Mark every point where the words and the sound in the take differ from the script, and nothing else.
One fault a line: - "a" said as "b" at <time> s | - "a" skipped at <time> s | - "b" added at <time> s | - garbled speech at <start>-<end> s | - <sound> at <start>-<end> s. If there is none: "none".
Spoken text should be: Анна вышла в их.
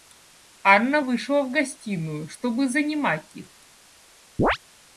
- "гостиную чтобы занимать" added at 1.5 s
- chirp at 4.4-4.6 s